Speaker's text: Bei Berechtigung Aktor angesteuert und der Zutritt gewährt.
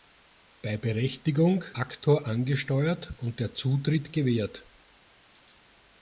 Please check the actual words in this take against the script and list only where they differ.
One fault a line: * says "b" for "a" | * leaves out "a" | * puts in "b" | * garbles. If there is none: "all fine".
all fine